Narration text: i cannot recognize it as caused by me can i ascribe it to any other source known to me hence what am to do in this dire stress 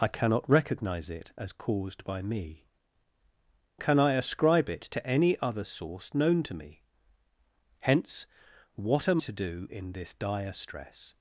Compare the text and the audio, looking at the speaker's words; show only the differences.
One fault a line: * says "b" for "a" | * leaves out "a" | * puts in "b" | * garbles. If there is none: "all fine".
all fine